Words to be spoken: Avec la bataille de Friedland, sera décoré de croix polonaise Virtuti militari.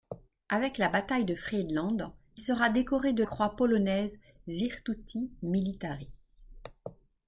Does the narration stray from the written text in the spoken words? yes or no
no